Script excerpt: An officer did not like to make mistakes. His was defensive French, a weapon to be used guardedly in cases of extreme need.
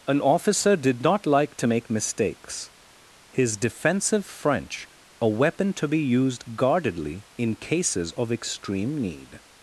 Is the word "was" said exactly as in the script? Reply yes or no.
no